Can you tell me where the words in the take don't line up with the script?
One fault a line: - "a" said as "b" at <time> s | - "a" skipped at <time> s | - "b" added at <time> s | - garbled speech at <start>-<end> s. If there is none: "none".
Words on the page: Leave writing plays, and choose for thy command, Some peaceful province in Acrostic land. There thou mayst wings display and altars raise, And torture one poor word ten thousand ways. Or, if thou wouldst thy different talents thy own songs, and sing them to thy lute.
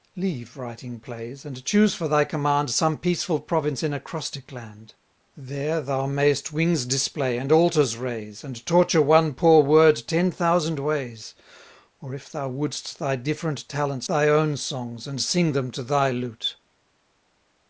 none